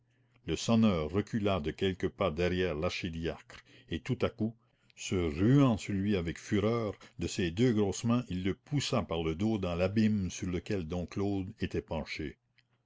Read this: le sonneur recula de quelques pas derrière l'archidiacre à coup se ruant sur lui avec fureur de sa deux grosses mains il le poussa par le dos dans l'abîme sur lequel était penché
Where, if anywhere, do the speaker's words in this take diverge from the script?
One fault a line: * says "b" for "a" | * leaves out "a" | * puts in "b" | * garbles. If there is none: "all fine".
* puts in "et tout"
* says "ses" for "sa"
* puts in "dom claude"